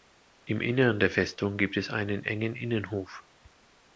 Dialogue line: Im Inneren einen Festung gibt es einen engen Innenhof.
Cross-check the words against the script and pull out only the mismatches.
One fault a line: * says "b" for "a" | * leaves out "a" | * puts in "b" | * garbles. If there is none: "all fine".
* says "der" for "einen"